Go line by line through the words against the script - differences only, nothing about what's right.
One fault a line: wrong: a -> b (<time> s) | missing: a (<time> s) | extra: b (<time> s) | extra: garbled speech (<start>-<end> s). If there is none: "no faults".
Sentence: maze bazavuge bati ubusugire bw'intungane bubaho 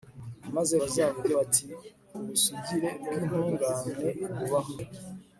no faults